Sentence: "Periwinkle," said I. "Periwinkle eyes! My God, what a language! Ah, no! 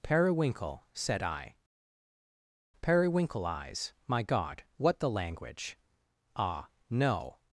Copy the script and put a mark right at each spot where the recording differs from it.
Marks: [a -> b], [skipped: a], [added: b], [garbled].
"Periwinkle," said I. "Periwinkle eyes! My God, what [a -> the] language! Ah, no!